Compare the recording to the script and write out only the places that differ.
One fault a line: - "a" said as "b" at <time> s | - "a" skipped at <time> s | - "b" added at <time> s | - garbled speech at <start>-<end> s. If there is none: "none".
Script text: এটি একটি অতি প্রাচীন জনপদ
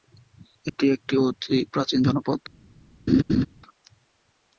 none